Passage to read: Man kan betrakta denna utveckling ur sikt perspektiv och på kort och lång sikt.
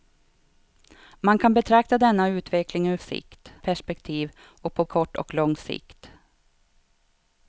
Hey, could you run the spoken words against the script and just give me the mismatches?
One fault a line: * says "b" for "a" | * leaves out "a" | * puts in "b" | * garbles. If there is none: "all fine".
all fine